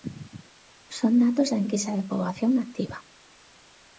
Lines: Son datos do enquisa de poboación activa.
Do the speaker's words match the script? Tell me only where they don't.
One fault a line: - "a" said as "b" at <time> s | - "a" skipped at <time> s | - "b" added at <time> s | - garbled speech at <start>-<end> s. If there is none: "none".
- "do" said as "da" at 1.5 s